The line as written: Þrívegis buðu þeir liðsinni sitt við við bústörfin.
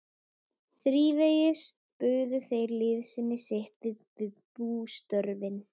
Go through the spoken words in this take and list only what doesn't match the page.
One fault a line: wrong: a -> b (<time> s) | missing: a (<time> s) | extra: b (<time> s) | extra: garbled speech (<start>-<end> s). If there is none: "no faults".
no faults